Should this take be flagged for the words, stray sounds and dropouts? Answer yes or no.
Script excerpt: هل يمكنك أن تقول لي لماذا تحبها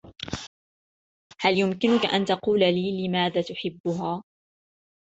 no